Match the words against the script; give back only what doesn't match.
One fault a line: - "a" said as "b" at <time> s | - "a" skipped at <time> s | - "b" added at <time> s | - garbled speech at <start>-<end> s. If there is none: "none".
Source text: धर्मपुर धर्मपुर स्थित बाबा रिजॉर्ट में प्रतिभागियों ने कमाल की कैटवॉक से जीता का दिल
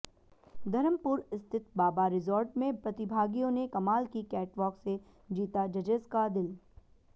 - "धर्मपुर" skipped at 1.2 s
- "जजेज" added at 5.7 s